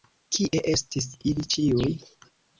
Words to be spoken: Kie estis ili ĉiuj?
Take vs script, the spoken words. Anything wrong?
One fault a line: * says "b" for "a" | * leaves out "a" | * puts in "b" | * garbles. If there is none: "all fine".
all fine